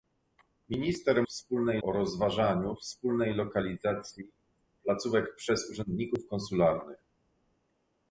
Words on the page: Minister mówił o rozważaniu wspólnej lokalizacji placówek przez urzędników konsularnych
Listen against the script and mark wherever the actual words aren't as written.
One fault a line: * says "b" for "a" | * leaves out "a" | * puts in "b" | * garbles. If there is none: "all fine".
* says "wspólnej" for "mówił"